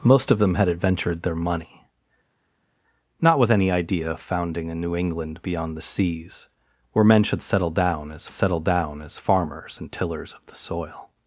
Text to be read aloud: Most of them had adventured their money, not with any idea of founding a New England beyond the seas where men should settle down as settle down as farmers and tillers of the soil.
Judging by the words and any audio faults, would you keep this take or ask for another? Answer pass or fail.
pass